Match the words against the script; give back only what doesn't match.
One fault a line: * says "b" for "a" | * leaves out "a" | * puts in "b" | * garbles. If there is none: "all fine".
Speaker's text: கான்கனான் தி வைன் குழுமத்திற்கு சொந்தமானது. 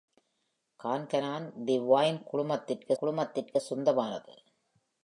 * puts in "குழுமத்திற்கு"